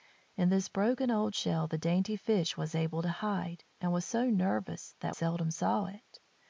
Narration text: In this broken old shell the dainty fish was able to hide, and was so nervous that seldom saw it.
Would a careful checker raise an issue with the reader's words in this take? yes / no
no